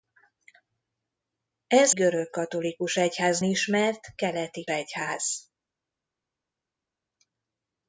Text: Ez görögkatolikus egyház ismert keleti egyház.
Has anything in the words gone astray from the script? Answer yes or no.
no